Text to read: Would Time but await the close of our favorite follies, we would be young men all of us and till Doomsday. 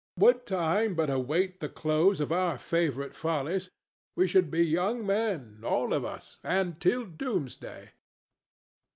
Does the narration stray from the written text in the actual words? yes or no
yes